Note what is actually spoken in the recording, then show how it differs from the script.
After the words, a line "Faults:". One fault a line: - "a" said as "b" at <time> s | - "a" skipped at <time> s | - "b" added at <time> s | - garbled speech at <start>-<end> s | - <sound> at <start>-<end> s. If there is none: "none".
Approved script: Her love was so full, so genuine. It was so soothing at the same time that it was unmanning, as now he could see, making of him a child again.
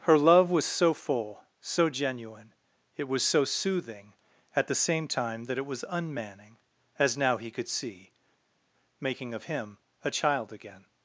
Her love was so full, so genuine. It was so soothing at the same time that it was unmanning, as now he could see, making of him a child again.
Faults:
none